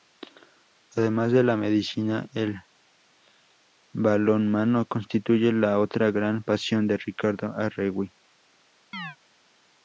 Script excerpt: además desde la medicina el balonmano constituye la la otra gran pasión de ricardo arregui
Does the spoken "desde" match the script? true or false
false